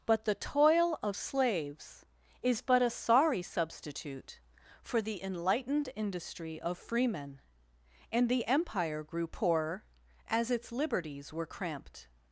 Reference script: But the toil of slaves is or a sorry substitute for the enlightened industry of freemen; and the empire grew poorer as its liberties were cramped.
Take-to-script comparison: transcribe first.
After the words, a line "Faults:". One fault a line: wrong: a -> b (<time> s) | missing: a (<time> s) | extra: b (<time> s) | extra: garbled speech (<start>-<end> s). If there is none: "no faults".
But the toil of slaves is but a sorry substitute for the enlightened industry of freemen; and the empire grew poorer as its liberties were cramped.
Faults:
wrong: or -> but (2.6 s)